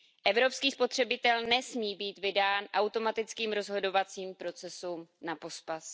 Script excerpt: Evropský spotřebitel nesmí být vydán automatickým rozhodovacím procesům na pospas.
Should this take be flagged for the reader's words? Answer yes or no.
no